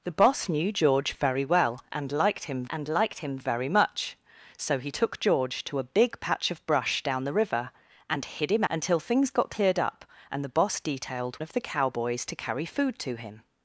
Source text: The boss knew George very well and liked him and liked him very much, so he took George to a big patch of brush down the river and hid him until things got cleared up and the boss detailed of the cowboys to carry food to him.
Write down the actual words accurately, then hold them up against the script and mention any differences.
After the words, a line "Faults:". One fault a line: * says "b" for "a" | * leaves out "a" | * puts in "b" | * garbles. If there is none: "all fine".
The boss knew George very well and liked him and liked him very much, so he took George to a big patch of brush down the river and hid him until things got cleared up and the boss detailed of the cowboys to carry food to him.
Faults:
all fine